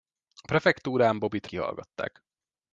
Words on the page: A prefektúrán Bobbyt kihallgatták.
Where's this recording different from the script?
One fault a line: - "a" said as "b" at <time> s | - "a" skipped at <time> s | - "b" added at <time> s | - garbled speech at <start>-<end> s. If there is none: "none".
none